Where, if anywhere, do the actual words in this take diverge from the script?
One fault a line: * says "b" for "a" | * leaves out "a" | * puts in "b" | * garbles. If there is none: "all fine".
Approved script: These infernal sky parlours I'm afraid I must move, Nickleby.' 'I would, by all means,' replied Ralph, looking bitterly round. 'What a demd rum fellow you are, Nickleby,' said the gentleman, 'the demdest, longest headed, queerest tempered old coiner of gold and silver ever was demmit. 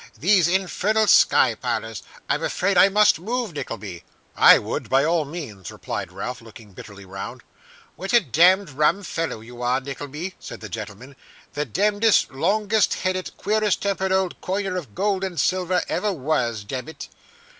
all fine